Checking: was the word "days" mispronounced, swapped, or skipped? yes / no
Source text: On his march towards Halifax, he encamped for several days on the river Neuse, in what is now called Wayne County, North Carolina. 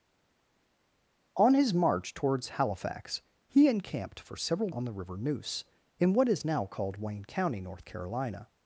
yes